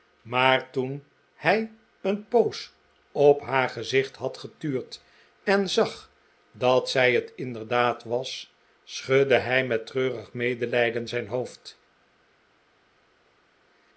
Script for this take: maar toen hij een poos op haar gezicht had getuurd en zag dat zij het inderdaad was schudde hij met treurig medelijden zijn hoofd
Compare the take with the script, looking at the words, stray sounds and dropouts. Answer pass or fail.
pass